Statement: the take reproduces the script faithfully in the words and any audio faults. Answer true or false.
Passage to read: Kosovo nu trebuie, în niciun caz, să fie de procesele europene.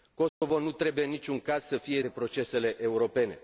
false